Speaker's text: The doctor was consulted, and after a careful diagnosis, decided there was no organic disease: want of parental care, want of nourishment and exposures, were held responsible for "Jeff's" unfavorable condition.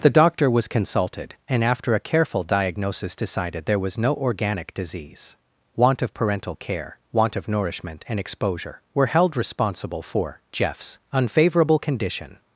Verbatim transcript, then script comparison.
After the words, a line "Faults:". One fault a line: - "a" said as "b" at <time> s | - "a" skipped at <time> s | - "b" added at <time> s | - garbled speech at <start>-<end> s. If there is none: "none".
The doctor was consulted, and after a careful diagnosis, decided there was no organic disease: want of parental care, want of nourishment and exposure, were held responsible for "Jeff's" unfavorable condition.
Faults:
- "exposures" said as "exposure" at 8.2 s